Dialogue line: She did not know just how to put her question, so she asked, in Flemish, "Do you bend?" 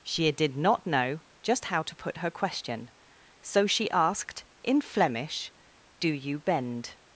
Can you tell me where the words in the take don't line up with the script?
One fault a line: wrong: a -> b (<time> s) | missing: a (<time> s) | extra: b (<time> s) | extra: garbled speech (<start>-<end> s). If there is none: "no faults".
no faults